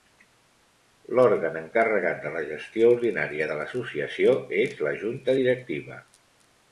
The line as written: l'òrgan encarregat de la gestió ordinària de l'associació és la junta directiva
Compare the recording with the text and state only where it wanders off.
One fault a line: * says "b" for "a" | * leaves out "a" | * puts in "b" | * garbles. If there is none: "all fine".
all fine